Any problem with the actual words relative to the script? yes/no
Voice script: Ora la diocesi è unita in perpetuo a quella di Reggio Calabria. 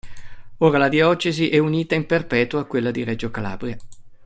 no